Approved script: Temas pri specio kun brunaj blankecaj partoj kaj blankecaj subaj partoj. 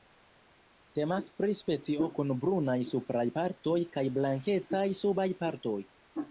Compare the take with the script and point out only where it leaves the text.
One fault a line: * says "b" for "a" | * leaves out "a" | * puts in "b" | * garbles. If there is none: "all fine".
* says "supraj" for "blankecaj"